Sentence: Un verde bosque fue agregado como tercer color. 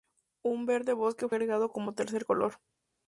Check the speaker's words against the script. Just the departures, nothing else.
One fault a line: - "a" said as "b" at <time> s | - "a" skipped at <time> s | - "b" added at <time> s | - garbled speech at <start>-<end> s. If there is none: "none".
- "fue" skipped at 1.3 s